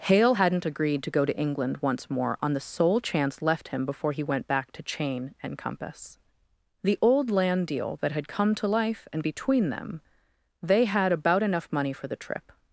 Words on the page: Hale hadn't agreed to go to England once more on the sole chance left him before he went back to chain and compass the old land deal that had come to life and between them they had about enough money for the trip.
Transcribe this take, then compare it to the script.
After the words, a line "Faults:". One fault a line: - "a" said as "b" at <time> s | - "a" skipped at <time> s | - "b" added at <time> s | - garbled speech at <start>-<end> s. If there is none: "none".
Hale hadn't agreed to go to England once more on the sole chance left him before he went back to chain and compass the old land deal that had come to life and between them they had about enough money for the trip.
Faults:
none